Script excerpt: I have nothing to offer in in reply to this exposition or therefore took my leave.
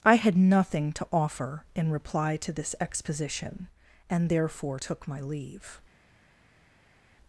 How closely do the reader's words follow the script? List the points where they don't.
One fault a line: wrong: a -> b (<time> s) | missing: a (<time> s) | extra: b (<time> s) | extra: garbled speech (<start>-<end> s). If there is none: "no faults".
wrong: have -> had (0.1 s)
missing: in (1.9 s)
wrong: or -> and (4.1 s)